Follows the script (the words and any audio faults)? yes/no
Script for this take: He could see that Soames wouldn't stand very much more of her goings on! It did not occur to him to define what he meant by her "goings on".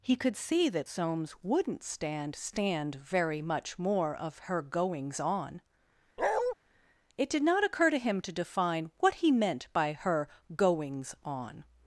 no